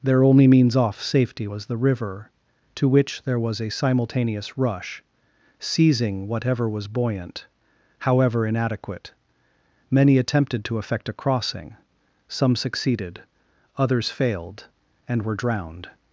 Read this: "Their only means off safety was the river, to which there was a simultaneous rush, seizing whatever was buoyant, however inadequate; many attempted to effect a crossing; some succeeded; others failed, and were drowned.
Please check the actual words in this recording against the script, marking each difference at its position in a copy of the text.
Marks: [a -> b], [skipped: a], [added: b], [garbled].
"Their only means off safety was the river, to which there was a simultaneous rush, seizing whatever was buoyant, however inadequate; many attempted to effect a crossing; some succeeded; others failed, and were drowned.